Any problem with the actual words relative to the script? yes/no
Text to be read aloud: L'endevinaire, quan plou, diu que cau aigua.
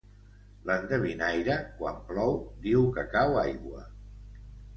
no